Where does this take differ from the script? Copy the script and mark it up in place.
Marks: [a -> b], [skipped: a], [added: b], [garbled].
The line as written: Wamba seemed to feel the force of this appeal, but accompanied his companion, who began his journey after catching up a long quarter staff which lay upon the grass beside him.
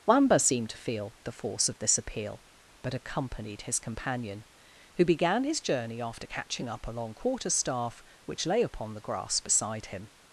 Wamba seemed to feel the force of this appeal, but accompanied his companion, who began his journey after catching up a long quarter staff which lay upon the grass beside him.